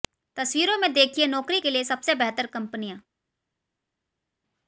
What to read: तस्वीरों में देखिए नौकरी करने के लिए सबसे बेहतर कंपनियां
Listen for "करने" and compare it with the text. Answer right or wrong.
wrong